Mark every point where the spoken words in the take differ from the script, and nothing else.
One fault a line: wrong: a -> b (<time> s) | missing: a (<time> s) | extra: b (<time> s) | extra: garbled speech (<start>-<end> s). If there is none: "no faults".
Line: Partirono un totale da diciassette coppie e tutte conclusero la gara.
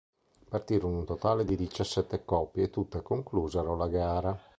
wrong: da -> di (1.4 s)